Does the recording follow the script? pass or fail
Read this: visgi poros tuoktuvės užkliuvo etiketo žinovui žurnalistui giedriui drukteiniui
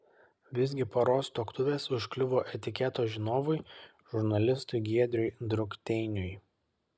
pass